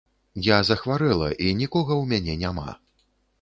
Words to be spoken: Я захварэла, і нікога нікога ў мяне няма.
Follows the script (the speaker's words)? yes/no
no